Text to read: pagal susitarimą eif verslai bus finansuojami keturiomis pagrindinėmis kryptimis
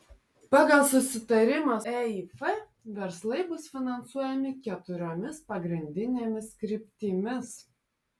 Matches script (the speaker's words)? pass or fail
pass